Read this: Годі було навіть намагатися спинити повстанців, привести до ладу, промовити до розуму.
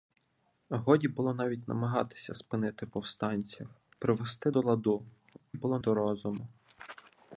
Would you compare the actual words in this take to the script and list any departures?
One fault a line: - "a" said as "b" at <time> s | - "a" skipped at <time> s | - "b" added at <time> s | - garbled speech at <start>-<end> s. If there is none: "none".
- "промовити" said as "було" at 5.5 s